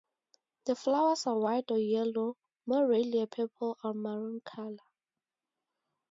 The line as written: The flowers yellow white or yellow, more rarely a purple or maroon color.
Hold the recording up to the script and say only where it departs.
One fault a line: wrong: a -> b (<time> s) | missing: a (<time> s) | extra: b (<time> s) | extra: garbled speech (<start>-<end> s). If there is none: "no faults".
wrong: yellow -> are (1.3 s)